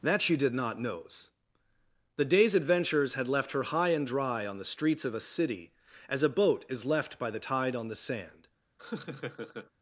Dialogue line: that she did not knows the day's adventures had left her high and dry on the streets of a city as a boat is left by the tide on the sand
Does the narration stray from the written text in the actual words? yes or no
no